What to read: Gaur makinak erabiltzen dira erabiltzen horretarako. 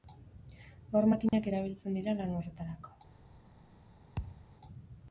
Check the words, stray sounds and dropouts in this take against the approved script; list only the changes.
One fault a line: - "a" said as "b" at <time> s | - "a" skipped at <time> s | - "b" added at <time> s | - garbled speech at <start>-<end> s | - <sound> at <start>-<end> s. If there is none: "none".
- dropout at 1.3-1.3 s
- "erabiltzen" said as "lan" at 2.2 s
- thud at 4.2-4.5 s